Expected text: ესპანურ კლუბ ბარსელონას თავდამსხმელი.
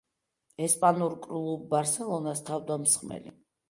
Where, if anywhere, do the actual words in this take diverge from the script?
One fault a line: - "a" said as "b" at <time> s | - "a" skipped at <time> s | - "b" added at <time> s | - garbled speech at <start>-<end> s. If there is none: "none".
none